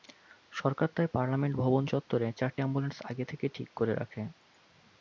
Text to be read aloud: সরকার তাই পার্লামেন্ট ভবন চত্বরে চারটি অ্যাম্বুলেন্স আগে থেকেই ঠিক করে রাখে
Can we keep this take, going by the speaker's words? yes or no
yes